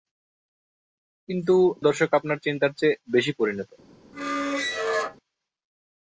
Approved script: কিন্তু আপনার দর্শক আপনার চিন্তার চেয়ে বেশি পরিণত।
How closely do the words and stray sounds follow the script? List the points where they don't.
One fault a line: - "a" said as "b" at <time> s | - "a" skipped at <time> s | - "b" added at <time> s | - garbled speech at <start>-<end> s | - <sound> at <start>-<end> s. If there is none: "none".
- "আপনার" skipped at 1.6 s
- squeak at 4.1-5.2 s